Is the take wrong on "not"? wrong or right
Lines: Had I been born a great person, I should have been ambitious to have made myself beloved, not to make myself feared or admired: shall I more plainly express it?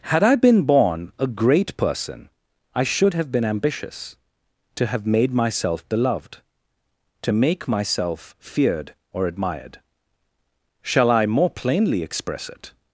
wrong